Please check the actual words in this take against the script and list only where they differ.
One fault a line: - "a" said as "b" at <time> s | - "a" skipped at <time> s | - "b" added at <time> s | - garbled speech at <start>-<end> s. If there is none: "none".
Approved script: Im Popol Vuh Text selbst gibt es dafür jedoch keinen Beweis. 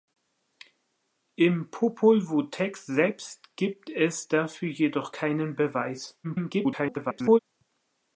- garbled speech at 6.2-7.4 s